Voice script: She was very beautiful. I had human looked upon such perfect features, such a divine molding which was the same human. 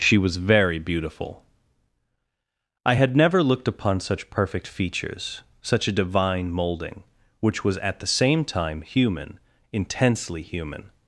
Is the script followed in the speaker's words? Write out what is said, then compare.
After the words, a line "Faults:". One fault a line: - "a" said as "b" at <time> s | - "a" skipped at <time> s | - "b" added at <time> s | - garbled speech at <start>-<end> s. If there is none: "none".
She was very beautiful. I had never looked upon such perfect features, such a divine molding which was at the same time human intensely human.
Faults:
- "human" said as "never" at 3.2 s
- "at" added at 7.8 s
- "time human intensely" added at 8.4 s